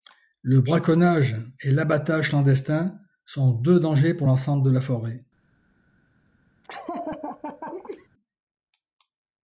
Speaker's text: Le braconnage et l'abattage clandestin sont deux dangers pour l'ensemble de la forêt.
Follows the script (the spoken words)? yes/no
yes